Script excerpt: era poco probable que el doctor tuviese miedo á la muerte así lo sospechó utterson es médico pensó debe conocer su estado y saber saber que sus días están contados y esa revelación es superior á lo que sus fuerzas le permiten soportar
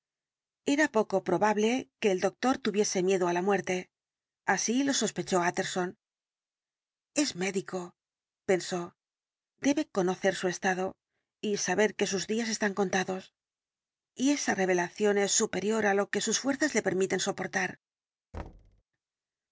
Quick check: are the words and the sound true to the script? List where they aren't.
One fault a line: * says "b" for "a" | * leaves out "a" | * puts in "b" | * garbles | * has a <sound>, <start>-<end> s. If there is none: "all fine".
* leaves out "saber"
* has a thud, 18.3-18.8 s